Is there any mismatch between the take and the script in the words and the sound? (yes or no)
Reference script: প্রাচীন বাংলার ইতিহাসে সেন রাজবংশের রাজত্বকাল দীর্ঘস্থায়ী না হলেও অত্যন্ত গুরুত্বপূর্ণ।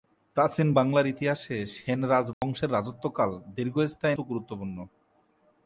yes